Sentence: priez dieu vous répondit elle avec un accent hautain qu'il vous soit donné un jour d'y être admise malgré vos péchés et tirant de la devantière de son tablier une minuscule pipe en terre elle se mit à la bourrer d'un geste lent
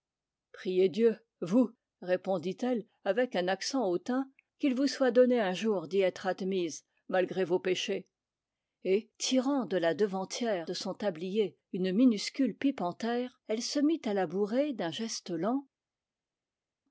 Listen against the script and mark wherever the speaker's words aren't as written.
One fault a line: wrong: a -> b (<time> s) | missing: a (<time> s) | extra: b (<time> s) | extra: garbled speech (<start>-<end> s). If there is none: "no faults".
no faults